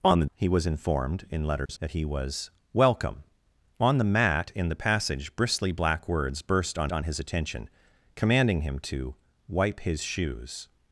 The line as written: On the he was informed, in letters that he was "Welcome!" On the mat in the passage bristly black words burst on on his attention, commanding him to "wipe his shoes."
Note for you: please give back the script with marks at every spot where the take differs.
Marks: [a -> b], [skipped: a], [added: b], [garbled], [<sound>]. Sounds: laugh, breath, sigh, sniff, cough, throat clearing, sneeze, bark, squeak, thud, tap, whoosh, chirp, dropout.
On the he was informed, in letters [dropout] that he was "Welcome!" On the mat in the passage bristly black words burst on on his attention, commanding him to "wipe his shoes."